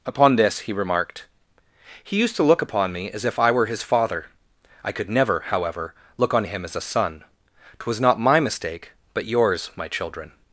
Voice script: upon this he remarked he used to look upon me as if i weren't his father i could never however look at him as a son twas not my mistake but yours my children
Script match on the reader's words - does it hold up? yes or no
no